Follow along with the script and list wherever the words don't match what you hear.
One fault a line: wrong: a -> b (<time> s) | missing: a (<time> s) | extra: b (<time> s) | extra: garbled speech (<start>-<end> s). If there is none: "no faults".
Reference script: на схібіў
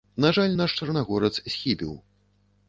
extra: жаль наш чарнагорац (0.4 s)